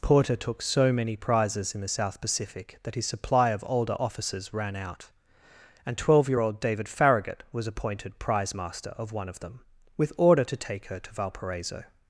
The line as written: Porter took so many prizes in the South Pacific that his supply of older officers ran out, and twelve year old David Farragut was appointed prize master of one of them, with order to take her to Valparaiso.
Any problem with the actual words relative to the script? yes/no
no